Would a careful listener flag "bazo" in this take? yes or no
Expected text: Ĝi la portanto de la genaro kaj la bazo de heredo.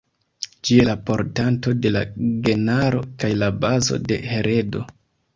no